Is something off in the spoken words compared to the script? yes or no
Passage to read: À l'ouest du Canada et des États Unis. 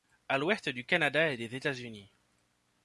no